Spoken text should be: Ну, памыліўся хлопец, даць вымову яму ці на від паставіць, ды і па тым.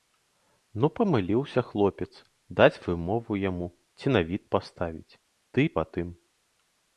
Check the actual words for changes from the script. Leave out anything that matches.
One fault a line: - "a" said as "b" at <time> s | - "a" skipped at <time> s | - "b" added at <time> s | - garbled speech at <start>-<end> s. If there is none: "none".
none